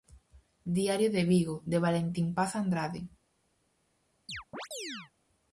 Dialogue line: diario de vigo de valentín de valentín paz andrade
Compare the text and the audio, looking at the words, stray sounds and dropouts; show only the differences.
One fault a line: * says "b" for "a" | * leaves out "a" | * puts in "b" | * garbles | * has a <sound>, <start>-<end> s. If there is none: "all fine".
* leaves out "de valentín"
* has a chirp, 4.3-5.1 s